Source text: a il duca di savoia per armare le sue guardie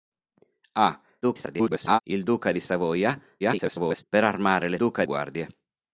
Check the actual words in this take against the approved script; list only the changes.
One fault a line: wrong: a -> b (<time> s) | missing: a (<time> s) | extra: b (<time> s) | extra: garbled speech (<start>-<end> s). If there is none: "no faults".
extra: garbled speech (1.2-2.0 s)
extra: garbled speech (3.4-4.0 s)
wrong: sue -> duca (4.7 s)